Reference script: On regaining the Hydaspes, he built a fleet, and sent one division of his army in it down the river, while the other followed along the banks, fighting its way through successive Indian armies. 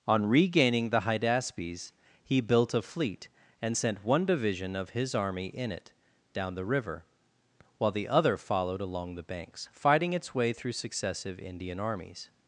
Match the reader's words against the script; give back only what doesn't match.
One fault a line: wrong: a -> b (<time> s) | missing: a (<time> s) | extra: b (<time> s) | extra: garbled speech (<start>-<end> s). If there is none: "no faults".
no faults